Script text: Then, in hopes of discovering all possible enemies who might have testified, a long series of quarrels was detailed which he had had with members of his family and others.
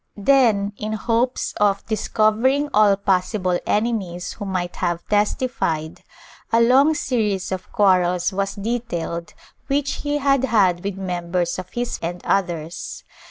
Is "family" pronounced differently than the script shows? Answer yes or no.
yes